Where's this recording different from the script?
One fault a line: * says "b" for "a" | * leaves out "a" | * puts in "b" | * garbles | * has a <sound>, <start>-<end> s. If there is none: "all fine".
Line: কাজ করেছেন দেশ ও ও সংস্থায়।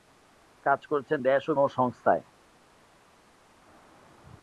all fine